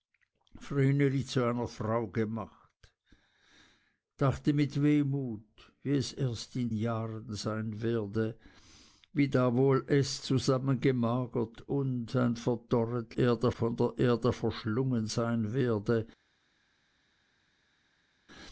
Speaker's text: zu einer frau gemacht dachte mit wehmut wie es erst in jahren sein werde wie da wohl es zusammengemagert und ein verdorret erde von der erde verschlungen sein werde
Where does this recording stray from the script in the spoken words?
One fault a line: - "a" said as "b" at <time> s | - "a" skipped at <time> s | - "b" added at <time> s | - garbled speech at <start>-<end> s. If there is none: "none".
none